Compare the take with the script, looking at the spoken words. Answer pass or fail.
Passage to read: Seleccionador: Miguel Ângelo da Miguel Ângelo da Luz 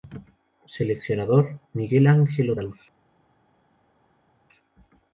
fail